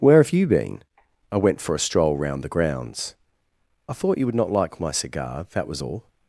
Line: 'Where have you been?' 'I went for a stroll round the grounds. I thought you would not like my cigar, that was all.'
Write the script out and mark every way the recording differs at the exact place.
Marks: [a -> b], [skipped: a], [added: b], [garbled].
'Where have you been?' 'I went for a stroll round the grounds. I thought you would not like my cigar, that was all.'